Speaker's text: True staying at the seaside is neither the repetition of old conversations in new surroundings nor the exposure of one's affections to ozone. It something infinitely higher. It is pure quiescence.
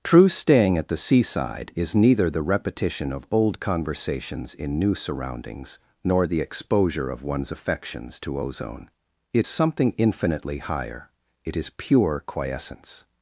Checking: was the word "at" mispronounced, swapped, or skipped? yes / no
no